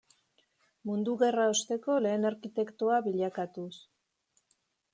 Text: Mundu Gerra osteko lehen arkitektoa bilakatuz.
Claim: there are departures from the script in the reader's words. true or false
false